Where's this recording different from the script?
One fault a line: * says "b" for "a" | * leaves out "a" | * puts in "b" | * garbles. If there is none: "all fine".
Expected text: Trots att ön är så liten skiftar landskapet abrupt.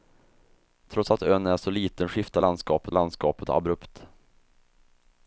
* puts in "landskapet"